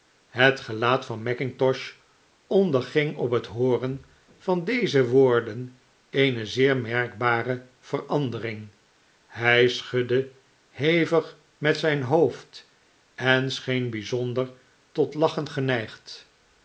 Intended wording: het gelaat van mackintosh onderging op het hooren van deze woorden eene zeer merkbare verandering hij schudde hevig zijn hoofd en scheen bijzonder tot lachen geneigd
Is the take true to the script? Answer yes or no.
no